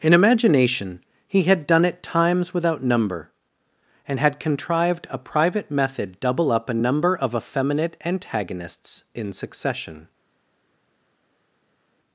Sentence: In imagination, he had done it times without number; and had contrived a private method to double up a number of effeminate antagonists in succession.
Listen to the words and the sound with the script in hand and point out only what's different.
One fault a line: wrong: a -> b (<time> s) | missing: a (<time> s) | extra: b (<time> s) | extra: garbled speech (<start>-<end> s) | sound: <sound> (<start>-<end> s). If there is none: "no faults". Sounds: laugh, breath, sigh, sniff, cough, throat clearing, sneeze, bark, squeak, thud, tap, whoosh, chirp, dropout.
missing: to (6.2 s)